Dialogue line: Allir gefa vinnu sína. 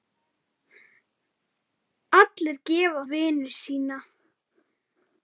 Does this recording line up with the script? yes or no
yes